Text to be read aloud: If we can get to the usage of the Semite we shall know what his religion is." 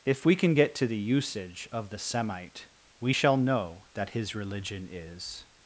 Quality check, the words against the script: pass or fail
fail